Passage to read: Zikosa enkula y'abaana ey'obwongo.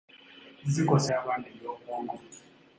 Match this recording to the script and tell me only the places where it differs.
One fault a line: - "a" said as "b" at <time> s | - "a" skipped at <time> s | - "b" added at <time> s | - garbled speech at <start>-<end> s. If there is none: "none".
- "enkula" skipped at 1.1 s